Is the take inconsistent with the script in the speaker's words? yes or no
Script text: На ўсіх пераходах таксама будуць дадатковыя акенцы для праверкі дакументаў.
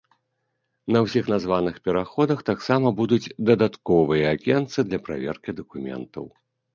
yes